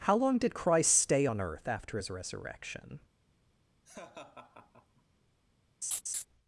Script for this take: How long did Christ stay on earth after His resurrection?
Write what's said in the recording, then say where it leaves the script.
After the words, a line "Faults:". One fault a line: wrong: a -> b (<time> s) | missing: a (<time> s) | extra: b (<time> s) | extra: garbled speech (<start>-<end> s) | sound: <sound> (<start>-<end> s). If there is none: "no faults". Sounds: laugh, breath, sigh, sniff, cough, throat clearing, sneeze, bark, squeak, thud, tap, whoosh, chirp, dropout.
How long did Christ stay on earth after His resurrection?
Faults:
sound: laugh (3.8-5.0 s)
sound: laugh (5.8-6.3 s)